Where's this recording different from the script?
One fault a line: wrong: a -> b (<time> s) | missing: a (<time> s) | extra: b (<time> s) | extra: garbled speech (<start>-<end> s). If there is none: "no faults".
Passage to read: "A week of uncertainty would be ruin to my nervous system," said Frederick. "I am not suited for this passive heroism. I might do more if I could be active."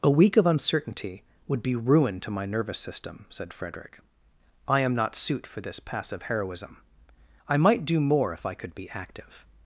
wrong: suited -> suit (5.2 s)